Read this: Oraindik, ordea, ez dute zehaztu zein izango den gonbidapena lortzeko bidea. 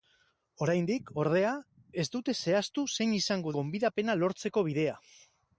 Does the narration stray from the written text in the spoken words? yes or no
yes